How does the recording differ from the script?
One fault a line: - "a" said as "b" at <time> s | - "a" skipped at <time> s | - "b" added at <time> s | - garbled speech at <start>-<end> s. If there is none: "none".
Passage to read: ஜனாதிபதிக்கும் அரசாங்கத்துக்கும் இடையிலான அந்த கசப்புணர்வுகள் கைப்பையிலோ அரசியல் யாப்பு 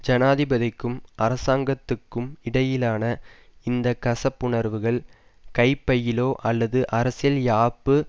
- "அந்த" said as "இந்த" at 3.6 s
- "அல்லது" added at 6.4 s